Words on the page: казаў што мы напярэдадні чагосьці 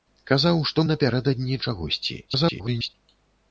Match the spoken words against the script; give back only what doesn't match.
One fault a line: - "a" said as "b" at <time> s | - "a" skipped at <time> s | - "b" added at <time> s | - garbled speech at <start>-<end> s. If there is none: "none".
- "мы" skipped at 0.8 s
- garbled speech at 2.3-2.9 s